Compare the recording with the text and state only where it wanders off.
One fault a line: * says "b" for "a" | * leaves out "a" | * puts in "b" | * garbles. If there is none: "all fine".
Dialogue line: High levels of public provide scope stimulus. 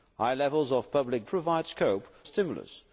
all fine